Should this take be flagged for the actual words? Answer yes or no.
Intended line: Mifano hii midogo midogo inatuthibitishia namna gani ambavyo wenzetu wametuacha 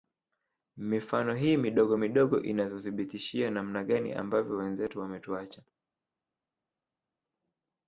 no